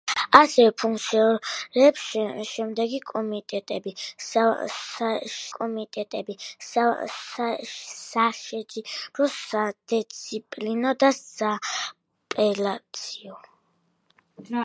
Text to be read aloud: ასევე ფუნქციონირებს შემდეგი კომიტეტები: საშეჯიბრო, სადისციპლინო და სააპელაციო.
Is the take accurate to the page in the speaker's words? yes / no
no